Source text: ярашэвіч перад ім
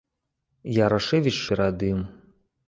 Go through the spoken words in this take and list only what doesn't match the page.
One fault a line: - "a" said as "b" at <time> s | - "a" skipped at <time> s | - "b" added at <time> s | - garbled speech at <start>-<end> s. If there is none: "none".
none